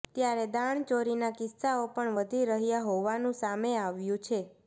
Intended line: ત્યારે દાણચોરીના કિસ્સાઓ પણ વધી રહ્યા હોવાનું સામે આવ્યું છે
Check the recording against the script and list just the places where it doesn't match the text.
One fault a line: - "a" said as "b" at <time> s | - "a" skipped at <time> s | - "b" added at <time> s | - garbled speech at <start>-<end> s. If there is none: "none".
none